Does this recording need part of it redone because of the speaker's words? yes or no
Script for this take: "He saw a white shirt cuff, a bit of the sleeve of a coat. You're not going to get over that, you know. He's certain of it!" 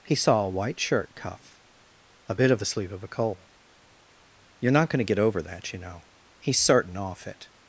yes